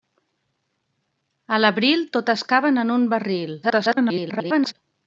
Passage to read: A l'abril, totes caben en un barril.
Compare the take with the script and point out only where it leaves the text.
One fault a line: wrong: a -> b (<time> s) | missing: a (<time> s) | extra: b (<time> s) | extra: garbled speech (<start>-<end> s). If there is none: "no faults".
extra: garbled speech (3.6-4.7 s)